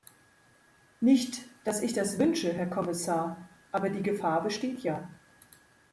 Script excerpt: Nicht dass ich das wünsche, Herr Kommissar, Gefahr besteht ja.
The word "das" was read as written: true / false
true